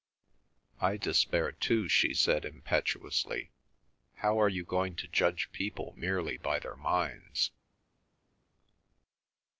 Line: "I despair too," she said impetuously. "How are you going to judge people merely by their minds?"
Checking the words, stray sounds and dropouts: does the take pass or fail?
pass